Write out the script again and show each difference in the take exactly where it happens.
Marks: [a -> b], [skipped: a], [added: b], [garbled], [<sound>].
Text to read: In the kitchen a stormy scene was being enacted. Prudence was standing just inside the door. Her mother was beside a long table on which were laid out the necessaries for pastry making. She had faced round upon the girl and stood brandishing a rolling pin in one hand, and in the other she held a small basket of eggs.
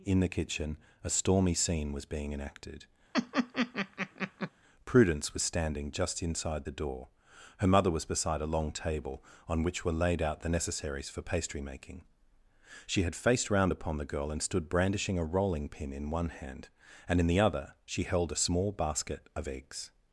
In the kitchen a stormy scene was being enacted. [laugh] Prudence was standing just inside the door. Her mother was beside a long table on which were laid out the necessaries for pastry making. She had faced round upon the girl and stood brandishing a rolling pin in one hand, and in the other she held a small basket of eggs.